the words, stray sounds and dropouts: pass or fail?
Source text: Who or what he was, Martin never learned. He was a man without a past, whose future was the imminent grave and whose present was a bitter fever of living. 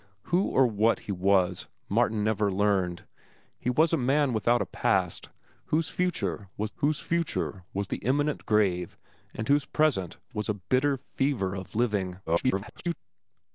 fail